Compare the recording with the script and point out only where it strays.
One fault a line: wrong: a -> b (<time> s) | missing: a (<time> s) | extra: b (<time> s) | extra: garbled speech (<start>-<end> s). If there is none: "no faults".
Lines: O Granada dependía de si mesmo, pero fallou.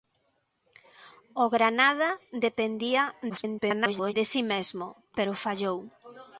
extra: garbled speech (3.3-4.1 s)